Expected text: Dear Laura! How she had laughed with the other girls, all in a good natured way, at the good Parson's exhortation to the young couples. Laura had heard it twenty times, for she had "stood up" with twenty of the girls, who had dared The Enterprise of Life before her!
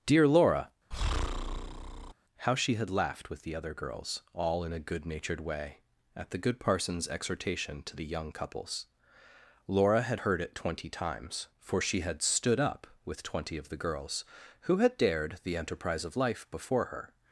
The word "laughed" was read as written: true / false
true